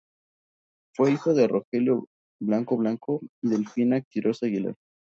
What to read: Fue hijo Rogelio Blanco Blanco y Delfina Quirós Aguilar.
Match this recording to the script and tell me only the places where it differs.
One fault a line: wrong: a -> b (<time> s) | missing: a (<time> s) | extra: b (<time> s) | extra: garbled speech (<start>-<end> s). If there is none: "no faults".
extra: de (1.4 s)